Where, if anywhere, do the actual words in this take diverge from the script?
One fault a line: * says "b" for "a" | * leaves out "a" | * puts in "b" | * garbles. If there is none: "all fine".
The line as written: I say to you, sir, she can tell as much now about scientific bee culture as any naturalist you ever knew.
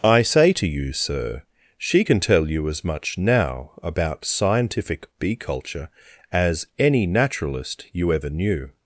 * puts in "you"